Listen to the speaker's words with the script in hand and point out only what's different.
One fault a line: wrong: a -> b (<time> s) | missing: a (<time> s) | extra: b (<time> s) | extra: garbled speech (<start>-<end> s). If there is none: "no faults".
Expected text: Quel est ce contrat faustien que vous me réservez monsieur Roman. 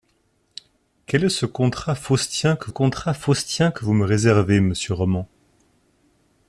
extra: contrat faustien que (2.7 s)